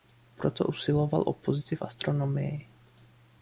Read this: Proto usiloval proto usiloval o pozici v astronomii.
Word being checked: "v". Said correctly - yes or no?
yes